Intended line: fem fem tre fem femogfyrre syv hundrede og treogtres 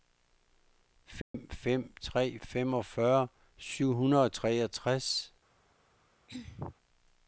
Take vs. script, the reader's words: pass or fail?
fail